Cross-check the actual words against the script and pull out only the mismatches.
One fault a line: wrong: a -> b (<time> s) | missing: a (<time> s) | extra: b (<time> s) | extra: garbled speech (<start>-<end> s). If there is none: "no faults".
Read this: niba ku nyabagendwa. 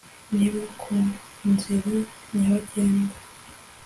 extra: nzira (1.5 s)